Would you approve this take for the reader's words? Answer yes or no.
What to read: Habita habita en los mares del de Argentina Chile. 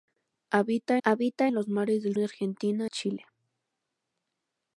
yes